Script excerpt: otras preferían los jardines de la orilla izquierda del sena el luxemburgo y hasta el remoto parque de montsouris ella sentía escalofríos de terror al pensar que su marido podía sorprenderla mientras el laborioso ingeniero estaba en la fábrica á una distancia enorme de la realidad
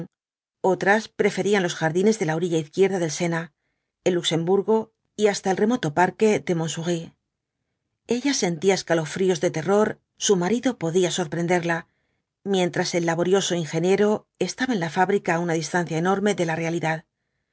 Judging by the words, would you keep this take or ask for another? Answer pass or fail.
fail